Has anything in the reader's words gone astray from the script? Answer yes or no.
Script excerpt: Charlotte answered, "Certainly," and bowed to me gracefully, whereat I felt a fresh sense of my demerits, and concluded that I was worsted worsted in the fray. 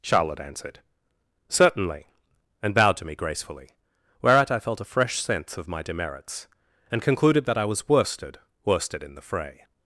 no